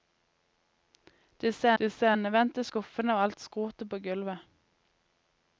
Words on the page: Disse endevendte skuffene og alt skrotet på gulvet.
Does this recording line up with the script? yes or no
no